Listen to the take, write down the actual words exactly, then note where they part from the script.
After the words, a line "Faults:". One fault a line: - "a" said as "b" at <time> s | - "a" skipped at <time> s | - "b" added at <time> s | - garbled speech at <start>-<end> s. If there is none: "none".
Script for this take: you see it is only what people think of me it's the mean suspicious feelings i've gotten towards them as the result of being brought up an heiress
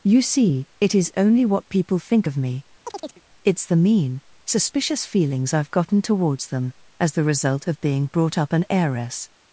you see it is only what people think of me it's the mean suspicious feelings i've gotten towards them as the result of being brought up an heiress
Faults:
none